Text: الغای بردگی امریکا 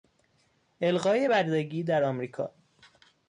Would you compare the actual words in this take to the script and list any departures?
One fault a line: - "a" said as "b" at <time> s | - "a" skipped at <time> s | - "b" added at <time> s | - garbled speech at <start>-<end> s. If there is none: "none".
- "در" added at 1.8 s